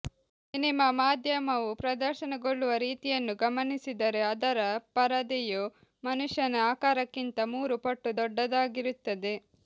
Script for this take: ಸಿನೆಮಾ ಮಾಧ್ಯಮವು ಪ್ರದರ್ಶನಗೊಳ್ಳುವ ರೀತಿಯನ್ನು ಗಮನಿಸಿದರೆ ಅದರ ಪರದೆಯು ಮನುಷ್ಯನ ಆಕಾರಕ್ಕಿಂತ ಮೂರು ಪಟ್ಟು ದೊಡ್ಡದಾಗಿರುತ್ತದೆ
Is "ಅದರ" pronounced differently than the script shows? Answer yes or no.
no